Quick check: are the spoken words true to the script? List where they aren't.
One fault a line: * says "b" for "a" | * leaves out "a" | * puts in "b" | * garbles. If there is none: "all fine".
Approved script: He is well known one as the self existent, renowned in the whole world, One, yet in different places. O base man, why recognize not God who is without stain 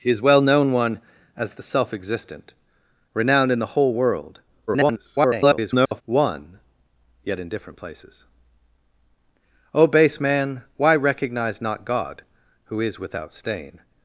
* garbles